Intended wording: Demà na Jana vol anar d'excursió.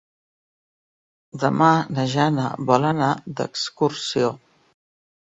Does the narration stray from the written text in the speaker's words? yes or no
no